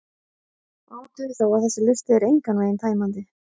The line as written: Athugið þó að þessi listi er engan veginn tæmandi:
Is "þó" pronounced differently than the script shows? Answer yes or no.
no